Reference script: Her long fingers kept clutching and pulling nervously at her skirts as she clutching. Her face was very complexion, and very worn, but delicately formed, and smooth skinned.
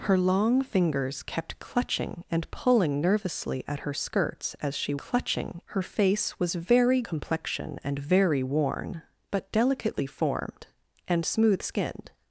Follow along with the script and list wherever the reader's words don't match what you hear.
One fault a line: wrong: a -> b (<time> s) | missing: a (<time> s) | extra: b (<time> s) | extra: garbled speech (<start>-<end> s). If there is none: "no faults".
no faults